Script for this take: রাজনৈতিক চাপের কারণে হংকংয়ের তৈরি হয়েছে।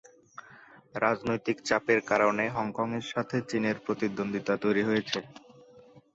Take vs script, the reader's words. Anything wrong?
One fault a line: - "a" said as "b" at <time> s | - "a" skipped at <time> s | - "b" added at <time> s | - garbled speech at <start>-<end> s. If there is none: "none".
- "সাথে চীনের প্রতিদ্বন্দ্বিতা" added at 3.1 s